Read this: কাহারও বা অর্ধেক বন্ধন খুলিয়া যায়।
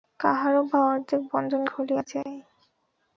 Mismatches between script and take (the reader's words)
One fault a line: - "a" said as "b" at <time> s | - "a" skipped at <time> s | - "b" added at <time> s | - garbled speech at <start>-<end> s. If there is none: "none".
none